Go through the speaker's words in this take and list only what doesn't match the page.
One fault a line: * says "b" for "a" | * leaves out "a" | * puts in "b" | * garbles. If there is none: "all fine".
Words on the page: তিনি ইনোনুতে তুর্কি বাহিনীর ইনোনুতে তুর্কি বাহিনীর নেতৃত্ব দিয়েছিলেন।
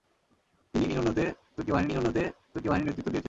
all fine